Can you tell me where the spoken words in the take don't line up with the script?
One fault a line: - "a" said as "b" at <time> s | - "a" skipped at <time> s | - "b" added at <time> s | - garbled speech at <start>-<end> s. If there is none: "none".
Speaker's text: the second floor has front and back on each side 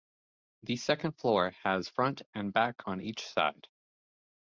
none